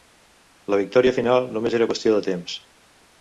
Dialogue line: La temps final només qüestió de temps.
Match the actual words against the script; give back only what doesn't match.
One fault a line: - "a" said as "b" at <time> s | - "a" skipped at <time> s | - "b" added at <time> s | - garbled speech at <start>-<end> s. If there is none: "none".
- "temps" said as "victòria" at 0.8 s
- "era" added at 1.8 s